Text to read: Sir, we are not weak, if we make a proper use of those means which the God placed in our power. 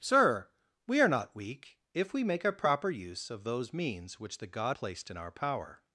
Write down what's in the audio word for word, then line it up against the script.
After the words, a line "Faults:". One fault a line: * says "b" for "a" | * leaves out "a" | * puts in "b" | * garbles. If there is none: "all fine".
Sir, we are not weak, if we make a proper use of those means which the God placed in our power.
Faults:
all fine